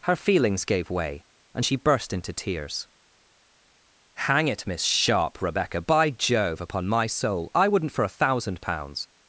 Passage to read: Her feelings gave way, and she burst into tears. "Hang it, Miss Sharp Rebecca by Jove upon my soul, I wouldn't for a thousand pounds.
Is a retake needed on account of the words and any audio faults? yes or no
no